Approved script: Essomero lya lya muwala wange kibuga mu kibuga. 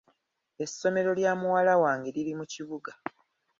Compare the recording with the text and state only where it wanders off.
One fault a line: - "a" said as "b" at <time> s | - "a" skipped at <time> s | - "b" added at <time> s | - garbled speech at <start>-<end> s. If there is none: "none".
- "lya" skipped at 1.3 s
- "kibuga" said as "liri" at 2.1 s